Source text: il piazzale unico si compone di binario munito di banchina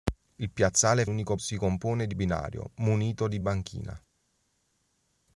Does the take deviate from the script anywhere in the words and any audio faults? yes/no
no